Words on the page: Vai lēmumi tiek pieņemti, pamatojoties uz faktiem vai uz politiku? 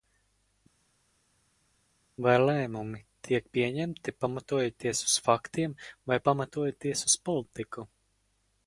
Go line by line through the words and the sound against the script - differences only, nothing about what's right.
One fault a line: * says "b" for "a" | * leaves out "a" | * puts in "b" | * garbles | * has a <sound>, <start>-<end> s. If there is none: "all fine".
* puts in "pamatojoties"